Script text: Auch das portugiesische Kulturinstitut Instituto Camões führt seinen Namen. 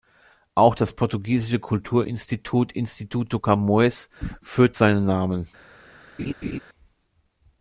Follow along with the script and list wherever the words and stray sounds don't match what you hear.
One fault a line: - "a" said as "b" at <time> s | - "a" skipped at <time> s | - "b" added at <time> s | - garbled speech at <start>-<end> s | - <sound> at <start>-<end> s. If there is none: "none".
- laugh at 6.2-6.6 s